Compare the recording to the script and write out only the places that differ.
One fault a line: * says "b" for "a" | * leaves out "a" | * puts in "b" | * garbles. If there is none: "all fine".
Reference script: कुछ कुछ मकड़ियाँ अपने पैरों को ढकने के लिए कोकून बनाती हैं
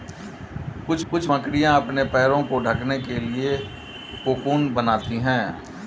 all fine